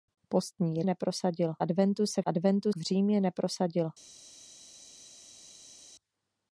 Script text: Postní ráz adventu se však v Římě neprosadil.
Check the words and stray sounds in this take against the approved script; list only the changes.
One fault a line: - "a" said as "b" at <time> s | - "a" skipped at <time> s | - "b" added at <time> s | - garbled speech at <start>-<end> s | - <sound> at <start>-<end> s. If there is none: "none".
- "ráz" said as "neprosadil" at 0.8 s
- "však" said as "adventu" at 2.3 s